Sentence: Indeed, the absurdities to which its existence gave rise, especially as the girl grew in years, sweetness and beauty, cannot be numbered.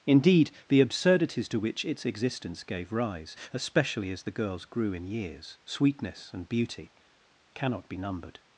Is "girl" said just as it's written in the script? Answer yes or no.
no